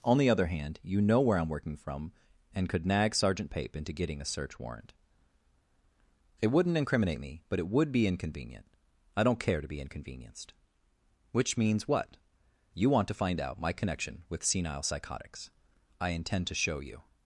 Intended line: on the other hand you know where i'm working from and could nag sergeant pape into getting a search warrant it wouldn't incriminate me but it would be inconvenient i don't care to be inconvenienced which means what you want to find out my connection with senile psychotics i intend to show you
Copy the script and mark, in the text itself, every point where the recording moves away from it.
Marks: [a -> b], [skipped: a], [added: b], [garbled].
on the other hand you know where i'm working from and could nag sergeant pape into getting a search warrant it wouldn't incriminate me but it would be inconvenient i don't care to be inconvenienced which means what you want to find out my connection with senile psychotics i intend to show you